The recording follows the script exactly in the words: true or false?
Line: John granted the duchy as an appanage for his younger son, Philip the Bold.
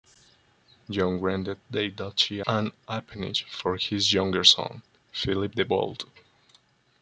false